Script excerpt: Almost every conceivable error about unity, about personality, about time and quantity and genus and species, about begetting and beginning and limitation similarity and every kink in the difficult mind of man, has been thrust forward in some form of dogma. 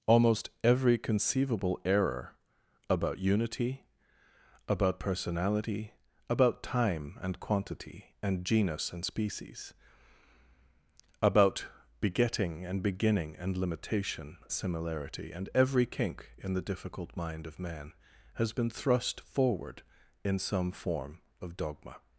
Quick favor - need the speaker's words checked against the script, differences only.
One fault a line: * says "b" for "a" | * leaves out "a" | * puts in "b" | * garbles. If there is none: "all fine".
all fine